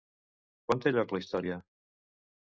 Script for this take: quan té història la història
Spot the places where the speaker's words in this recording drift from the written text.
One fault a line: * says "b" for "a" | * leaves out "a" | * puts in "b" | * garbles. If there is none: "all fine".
* says "lloc" for "història"